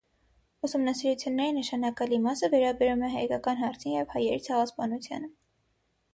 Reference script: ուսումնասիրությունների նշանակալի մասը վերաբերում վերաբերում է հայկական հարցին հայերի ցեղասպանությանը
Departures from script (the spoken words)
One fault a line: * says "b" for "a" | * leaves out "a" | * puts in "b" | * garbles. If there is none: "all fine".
* leaves out "վերաբերում"
* puts in "և"